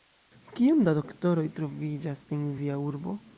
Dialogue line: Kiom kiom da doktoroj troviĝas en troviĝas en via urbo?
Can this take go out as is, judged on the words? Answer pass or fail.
fail